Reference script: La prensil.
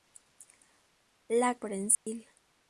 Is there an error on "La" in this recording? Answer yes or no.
no